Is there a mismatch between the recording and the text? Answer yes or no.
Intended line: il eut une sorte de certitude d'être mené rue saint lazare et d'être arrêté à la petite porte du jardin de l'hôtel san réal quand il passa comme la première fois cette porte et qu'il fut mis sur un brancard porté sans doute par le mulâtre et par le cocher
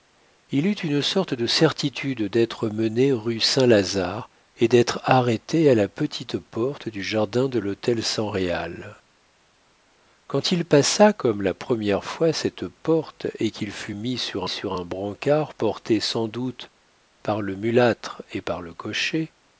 yes